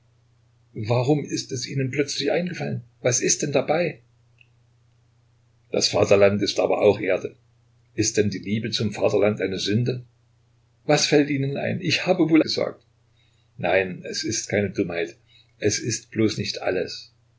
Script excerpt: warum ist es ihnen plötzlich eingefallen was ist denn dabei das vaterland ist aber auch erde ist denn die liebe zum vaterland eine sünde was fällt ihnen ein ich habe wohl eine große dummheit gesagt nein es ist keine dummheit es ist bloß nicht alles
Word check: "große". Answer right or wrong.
wrong